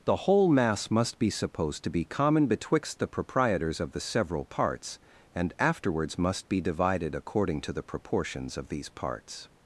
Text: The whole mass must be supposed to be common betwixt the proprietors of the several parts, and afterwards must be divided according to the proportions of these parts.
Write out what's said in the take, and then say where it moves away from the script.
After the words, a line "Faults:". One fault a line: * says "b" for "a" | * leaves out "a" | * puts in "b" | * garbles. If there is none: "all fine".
The whole mass must be supposed to be common betwixt the proprietors of the several parts, and afterwards must be divided according to the proportions of these parts.
Faults:
all fine